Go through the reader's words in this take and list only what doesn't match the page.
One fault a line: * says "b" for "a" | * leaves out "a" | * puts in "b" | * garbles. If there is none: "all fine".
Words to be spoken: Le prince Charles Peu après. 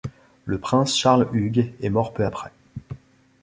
* puts in "Hugues est mort"